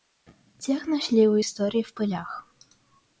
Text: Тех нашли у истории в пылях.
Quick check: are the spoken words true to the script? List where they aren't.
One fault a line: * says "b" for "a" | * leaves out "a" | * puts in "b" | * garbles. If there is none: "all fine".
all fine